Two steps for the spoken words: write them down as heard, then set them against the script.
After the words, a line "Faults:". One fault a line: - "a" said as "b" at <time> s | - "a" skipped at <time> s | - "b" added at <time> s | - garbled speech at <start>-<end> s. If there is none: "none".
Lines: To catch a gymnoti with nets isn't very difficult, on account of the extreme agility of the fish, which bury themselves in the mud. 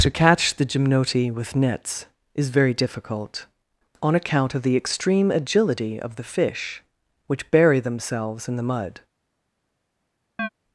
To catch the gymnoti with nets is very difficult, on account of the extreme agility of the fish, which bury themselves in the mud.
Faults:
- "a" said as "the" at 0.6 s
- "isn't" said as "is" at 2.3 s